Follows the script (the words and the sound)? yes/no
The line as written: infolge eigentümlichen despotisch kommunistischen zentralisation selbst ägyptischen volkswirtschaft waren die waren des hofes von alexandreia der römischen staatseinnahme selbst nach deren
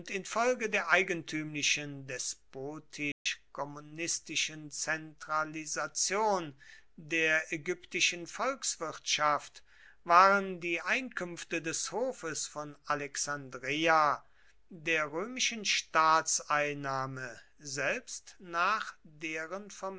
no